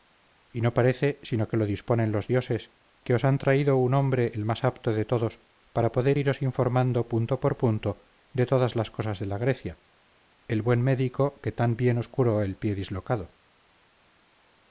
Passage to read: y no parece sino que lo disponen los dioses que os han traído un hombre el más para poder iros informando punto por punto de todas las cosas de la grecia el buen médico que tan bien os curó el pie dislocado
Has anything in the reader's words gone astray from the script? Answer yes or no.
yes